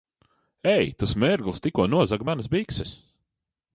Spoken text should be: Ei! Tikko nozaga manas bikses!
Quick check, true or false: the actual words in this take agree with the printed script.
false